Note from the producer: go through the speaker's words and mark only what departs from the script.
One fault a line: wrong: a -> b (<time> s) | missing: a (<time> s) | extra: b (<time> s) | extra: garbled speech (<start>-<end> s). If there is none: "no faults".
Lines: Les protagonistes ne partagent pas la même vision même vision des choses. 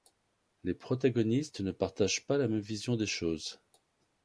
missing: même vision (3.0 s)